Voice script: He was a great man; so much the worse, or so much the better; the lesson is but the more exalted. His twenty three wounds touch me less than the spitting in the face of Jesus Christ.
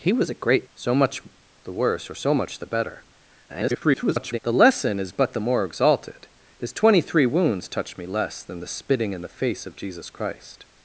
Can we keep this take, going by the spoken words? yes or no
no